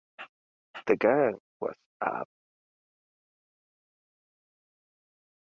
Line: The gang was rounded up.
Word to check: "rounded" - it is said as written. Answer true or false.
false